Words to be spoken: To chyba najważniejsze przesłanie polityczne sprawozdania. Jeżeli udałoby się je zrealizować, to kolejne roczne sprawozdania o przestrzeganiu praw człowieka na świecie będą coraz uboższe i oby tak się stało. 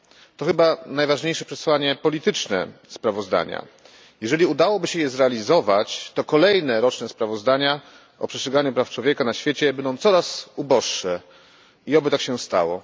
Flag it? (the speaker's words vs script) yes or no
no